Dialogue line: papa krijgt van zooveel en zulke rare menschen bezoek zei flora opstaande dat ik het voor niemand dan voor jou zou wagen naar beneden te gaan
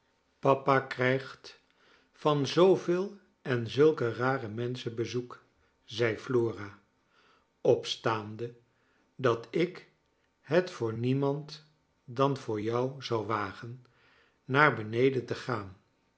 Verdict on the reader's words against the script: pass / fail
pass